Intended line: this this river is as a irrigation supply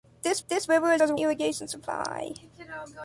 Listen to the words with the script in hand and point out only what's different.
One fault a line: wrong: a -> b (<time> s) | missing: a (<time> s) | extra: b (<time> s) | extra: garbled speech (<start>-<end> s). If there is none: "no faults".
no faults